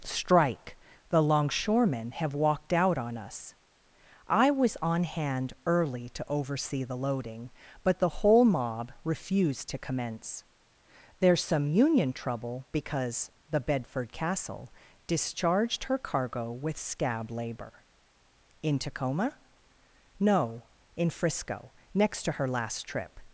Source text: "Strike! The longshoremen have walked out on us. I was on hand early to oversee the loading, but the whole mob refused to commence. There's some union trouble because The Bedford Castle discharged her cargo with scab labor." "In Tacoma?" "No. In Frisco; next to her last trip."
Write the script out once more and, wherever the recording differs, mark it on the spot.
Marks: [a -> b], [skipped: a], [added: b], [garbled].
"Strike! The longshoremen have walked out on us. I was on hand early to oversee the loading, but the whole mob refused to commence. There's some union trouble because The Bedford Castle discharged her cargo with scab labor." "In Tacoma?" "No. In Frisco; next to her last trip."